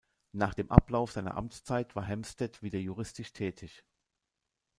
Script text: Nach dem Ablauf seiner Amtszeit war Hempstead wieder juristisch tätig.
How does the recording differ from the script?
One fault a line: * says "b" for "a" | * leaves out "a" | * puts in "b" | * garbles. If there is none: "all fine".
all fine